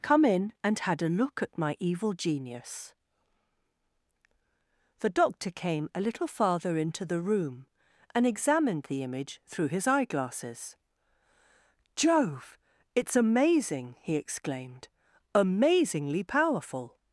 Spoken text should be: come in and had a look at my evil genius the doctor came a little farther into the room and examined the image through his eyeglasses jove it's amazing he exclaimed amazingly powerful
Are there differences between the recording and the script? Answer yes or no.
no